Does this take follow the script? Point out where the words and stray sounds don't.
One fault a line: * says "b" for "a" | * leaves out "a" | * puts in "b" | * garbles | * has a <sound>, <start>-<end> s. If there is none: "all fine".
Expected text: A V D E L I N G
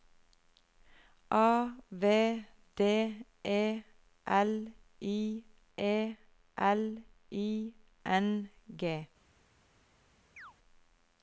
* puts in "E L I"
* has a chirp, 10.4-10.5 s